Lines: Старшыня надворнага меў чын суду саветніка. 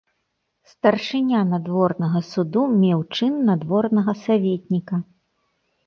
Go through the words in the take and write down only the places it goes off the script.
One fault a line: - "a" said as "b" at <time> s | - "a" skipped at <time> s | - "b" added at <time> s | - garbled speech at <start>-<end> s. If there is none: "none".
- "суду" added at 2.3 s
- "суду" said as "надворнага" at 3.5 s